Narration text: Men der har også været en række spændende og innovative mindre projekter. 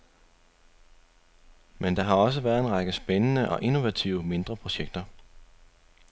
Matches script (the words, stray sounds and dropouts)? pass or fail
pass